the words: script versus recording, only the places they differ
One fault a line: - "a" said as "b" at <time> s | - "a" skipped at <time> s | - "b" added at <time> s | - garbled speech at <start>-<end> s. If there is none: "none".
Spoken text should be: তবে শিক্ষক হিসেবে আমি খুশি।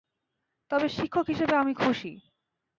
none